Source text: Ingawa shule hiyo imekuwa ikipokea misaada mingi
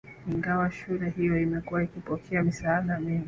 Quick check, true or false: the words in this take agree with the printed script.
true